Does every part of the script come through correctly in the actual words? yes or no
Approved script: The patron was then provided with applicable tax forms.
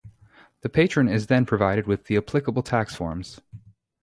no